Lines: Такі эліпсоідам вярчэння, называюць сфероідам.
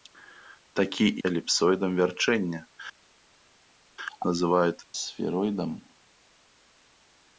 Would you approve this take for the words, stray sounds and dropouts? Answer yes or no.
yes